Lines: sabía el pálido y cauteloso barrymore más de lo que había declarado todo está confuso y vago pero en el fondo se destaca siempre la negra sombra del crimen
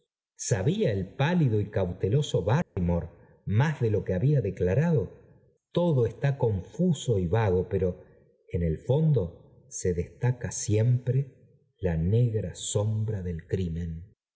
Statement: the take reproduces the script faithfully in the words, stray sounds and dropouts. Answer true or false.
false